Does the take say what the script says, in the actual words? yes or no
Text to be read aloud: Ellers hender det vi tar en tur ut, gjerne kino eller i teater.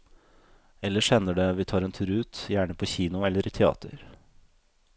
no